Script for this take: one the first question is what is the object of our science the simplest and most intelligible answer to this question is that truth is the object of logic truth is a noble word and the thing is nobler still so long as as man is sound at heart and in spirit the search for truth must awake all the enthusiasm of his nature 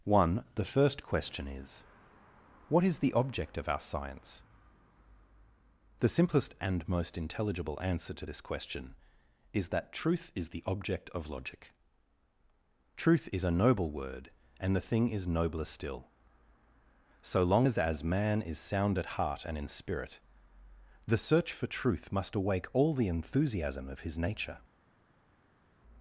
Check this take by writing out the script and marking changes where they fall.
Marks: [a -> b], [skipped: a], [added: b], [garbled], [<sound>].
one the first question is what is the object of our science the simplest and most intelligible answer to this question is that truth is the object of logic truth is a noble word and the thing is nobler still so long as as man is sound at heart and in spirit the search for truth must awake all the enthusiasm of his nature